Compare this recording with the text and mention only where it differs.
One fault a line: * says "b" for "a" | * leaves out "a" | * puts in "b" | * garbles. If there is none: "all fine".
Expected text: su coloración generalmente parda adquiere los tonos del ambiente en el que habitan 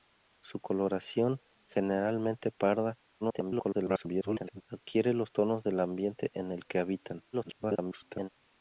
* garbles
* garbles